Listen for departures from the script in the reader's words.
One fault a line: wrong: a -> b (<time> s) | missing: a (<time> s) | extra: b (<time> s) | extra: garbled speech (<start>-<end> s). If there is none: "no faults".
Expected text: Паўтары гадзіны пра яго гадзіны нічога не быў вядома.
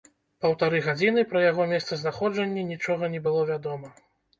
wrong: гадзіны -> месцазнаходжанне (1.8 s)
wrong: быў -> было (3.3 s)